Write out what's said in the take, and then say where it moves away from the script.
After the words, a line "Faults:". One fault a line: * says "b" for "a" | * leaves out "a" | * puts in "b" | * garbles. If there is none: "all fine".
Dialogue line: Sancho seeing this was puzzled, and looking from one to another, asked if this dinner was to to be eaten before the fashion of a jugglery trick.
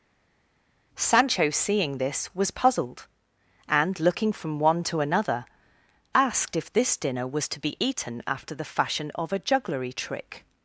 Sancho seeing this was puzzled, and looking from one to another, asked if this dinner was to be eaten after the fashion of a jugglery trick.
Faults:
* leaves out "to"
* says "after" for "before"